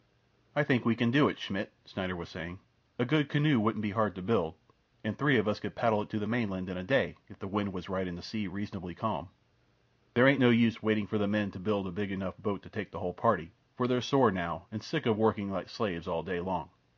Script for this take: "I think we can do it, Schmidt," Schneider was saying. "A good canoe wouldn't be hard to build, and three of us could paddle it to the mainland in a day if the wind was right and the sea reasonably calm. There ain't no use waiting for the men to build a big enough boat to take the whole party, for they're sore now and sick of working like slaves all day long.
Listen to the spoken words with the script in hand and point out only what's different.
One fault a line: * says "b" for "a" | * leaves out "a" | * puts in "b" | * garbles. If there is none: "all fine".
all fine